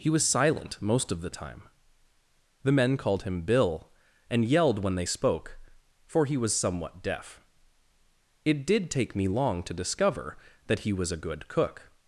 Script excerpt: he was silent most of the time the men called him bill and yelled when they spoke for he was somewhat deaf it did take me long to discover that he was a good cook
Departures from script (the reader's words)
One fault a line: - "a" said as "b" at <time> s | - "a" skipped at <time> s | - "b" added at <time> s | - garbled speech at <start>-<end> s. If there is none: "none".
none